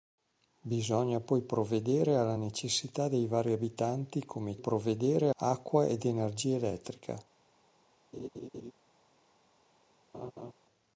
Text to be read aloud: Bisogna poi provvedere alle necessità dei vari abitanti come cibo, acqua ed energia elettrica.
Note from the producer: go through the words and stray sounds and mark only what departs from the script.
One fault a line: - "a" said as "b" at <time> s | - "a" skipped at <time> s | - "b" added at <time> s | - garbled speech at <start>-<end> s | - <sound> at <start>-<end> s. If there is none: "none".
- "cibo" said as "provvedere" at 4.6 s
- laugh at 8.1-8.7 s
- laugh at 10.1-10.5 s